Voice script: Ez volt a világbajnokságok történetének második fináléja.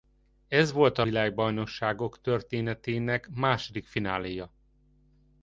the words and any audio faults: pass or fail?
pass